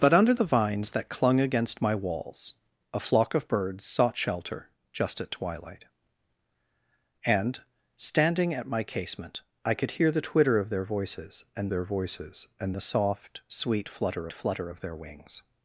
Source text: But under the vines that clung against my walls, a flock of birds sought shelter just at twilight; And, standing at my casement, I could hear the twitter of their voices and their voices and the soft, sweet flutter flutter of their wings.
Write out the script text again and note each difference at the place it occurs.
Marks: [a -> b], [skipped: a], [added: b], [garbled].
But under the vines that clung against my walls, a flock of birds sought shelter just at twilight; And, standing at my casement, I could hear the twitter of their voices and their voices and the soft, sweet flutter flutter of their wings.